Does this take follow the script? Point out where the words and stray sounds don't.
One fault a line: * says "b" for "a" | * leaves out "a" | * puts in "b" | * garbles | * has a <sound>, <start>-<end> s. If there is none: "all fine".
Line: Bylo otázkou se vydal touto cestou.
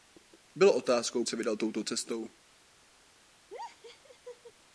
* has a laugh, 3.5-4.5 s